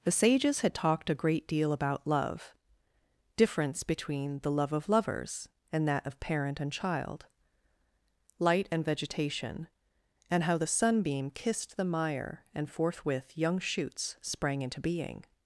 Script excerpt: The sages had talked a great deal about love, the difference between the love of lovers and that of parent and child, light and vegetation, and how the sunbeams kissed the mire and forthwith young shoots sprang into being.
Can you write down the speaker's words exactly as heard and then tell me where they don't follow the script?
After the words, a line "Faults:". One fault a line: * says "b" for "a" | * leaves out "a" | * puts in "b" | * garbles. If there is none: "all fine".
The sages had talked a great deal about love, difference between the love of lovers and that of parent and child, light and vegetation, and how the sunbeam kissed the mire and forthwith young shoots sprang into being.
Faults:
* leaves out "the"
* says "sunbeam" for "sunbeams"